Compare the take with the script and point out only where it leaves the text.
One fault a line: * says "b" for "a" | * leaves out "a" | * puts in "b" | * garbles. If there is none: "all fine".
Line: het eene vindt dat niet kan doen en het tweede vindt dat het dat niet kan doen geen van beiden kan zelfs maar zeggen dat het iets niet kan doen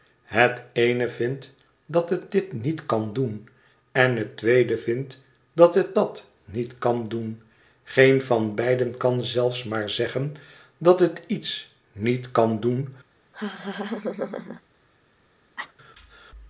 * puts in "het dit"